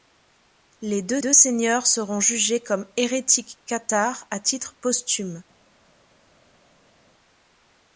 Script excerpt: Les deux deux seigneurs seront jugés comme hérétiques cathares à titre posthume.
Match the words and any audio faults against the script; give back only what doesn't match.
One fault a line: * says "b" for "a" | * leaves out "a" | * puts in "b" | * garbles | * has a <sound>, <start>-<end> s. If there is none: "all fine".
all fine